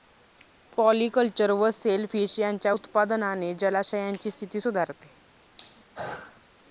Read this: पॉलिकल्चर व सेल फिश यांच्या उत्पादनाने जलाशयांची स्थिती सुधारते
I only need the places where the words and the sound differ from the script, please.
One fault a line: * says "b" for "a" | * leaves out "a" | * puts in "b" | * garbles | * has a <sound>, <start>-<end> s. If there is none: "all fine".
* has a throat clearing, 5.5-6.5 s